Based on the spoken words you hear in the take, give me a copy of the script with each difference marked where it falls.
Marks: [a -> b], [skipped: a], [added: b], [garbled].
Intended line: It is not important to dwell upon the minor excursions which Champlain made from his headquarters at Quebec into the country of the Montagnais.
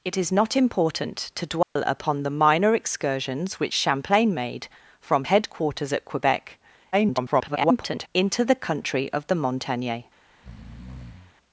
It is not important to dwell upon the minor excursions which Champlain made from [skipped: his] headquarters at Quebec [garbled] into the country of the Montagnais.